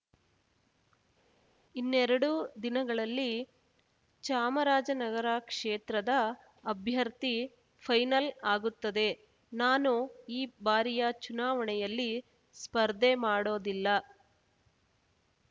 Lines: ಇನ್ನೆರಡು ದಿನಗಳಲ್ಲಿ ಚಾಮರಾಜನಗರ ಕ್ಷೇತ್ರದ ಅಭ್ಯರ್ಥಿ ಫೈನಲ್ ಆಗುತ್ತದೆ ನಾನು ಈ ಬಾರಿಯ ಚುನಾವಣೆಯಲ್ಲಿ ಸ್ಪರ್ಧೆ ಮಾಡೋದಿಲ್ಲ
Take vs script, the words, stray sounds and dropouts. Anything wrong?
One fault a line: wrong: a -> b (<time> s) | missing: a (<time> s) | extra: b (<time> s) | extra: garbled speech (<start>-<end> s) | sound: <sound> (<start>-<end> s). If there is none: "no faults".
no faults